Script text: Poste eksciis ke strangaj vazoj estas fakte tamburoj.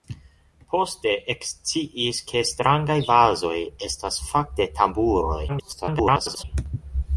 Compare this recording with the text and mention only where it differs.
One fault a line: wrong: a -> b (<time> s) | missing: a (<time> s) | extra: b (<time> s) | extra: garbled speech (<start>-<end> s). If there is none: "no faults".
extra: garbled speech (5.5-6.4 s)